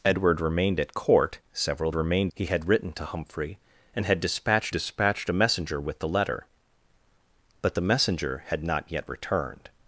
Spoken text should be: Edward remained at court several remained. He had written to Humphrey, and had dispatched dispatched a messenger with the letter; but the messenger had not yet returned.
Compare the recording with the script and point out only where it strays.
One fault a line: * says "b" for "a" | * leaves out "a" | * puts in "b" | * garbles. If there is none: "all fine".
all fine